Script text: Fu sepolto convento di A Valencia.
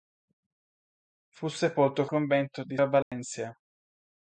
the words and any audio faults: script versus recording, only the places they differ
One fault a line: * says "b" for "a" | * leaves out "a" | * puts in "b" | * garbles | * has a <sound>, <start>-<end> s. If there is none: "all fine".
* has a dropout, 3.0-3.1 s